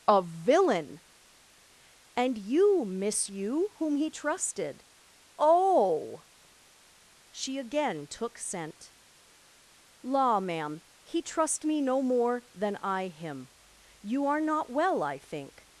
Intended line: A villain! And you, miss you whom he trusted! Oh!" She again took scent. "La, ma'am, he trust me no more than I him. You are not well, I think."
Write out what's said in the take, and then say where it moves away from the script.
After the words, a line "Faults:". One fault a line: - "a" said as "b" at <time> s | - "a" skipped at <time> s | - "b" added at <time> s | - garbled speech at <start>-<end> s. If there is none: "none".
A villain! And you, miss you whom he trusted! Oh!" She again took scent. "La, ma'am, he trust me no more than I him. You are not well, I think."
Faults:
none